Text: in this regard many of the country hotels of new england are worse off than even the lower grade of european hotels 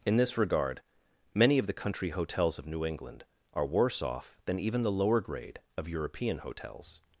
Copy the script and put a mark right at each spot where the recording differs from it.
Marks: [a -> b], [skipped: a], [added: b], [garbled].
in this regard many of the country hotels of new england are worse off than even the lower grade of european hotels